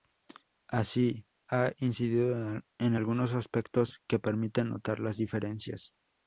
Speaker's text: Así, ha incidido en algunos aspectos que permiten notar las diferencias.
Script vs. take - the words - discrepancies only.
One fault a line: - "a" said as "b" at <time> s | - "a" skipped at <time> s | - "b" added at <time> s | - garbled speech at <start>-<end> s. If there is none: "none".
none